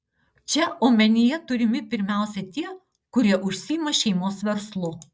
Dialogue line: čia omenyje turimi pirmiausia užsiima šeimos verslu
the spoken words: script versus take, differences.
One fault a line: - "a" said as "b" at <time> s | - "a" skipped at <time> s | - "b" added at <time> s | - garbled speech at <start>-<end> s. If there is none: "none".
- "tie kurie" added at 2.6 s